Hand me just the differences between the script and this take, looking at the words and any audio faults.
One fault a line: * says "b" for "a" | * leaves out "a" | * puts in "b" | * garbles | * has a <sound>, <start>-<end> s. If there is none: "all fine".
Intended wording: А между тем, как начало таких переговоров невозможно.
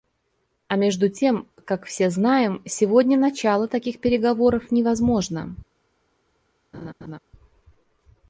* puts in "все знаем сегодня"
* has a laugh, 6.7-7.2 s